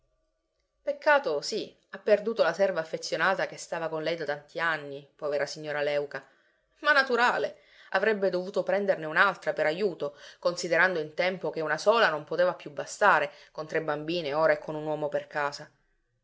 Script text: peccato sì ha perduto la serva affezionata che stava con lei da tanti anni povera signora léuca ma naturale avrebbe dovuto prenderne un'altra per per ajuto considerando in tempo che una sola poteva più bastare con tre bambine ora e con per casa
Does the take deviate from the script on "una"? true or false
false